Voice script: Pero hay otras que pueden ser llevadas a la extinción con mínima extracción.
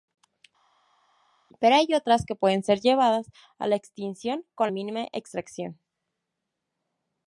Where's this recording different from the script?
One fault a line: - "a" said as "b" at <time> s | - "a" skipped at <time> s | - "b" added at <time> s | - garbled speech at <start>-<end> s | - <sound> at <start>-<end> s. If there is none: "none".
none